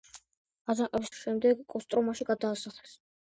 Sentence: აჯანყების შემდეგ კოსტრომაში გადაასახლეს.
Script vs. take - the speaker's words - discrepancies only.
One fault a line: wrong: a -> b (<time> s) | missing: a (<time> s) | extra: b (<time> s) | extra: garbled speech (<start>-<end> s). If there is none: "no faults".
no faults